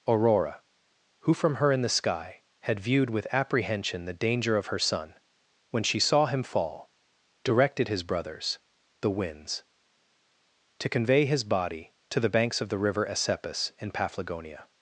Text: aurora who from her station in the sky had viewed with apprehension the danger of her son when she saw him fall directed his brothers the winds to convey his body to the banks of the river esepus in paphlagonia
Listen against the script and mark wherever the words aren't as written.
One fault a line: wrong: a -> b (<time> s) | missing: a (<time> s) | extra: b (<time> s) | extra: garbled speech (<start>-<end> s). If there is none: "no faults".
missing: station (1.7 s)